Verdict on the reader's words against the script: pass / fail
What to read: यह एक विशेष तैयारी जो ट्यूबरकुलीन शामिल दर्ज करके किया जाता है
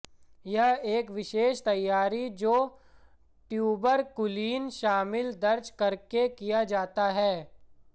pass